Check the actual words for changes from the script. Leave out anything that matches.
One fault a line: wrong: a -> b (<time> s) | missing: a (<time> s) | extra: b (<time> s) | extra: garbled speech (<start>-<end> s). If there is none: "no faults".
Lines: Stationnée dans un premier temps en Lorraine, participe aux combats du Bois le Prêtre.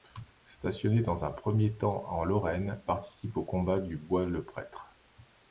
no faults